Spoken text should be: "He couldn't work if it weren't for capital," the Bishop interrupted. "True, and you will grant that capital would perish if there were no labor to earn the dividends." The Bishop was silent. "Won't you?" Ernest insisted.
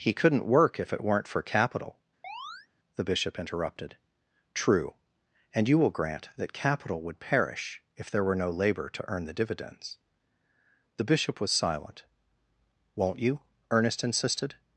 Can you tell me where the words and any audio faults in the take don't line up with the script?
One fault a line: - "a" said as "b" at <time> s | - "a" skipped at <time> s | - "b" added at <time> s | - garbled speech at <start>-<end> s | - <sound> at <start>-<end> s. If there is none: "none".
- chirp at 2.2-2.7 s